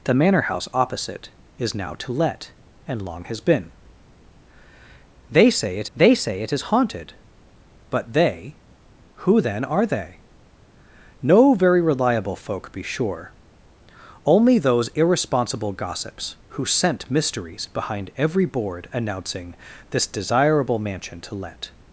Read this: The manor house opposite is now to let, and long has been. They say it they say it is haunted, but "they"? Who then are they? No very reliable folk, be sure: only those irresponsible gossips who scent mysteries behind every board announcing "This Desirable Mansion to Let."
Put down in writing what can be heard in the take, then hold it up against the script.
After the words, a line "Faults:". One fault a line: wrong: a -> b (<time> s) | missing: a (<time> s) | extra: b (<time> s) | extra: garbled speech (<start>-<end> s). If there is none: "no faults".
The manor house opposite is now to let, and long has been. They say it they say it is haunted, but "they"? Who then are they? No very reliable folk, be sure: only those irresponsible gossips who scent mysteries behind every board announcing "This Desirable Mansion to Let."
Faults:
no faults